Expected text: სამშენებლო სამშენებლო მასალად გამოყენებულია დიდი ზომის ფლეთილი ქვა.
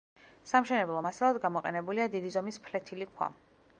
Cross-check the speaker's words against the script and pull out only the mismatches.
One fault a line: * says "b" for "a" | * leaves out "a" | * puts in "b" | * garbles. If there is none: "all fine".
* leaves out "სამშენებლო"